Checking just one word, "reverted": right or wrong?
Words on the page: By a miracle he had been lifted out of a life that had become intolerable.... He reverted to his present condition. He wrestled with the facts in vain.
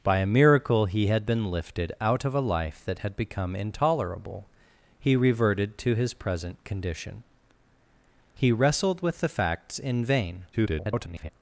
right